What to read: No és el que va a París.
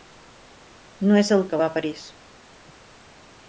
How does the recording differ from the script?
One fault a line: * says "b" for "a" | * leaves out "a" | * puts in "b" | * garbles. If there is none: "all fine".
all fine